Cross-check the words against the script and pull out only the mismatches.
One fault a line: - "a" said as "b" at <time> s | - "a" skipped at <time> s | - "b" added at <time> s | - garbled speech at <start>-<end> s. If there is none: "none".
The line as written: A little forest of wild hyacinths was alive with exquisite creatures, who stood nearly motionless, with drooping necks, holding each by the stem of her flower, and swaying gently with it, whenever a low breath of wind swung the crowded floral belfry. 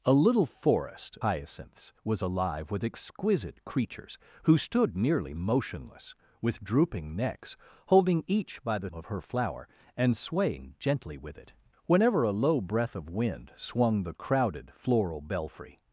- "of wild" skipped at 1.2 s
- "stem" skipped at 8.9 s